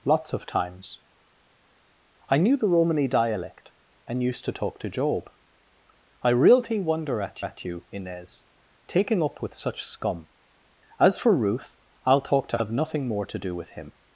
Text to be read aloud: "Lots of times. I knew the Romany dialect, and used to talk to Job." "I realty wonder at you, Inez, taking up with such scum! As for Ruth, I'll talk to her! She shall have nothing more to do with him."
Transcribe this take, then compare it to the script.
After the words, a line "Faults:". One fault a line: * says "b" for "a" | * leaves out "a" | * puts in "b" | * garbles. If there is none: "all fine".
"Lots of times. I knew the Romany dialect, and used to talk to Job." "I realty wonder at at you, Inez, taking up with such scum! As for Ruth, I'll talk to have nothing more to do with him."
Faults:
* puts in "at"
* leaves out "her She shall"